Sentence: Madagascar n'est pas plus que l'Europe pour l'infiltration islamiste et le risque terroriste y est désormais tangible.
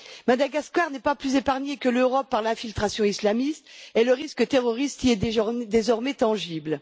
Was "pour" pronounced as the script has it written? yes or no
no